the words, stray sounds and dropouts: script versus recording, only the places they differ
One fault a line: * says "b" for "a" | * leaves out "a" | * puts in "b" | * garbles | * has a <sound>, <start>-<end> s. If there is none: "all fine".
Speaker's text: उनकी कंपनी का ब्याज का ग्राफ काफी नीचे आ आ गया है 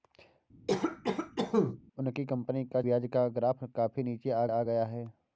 * has a cough, 0.7-1.8 s